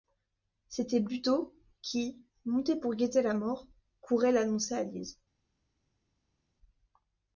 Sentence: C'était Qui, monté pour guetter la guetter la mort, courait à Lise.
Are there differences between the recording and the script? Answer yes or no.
yes